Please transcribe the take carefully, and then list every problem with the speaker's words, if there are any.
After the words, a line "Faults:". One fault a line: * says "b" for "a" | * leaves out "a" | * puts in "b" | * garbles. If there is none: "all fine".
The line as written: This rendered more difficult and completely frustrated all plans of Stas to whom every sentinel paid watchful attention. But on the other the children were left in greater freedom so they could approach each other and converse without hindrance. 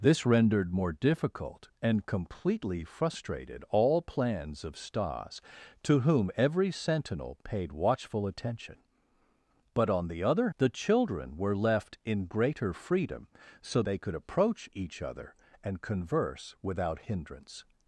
This rendered more difficult and completely frustrated all plans of Stas to whom every sentinel paid watchful attention. But on the other the children were left in greater freedom so they could approach each other and converse without hindrance.
Faults:
all fine